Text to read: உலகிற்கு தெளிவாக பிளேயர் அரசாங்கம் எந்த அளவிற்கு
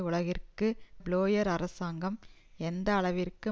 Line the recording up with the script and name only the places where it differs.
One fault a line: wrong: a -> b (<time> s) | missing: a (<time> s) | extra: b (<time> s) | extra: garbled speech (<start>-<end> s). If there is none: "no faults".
missing: தெளிவாக (0.7 s)